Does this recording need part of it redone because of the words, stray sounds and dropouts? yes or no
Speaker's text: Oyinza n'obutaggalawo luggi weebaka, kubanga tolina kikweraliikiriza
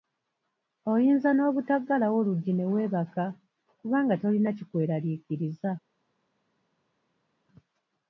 yes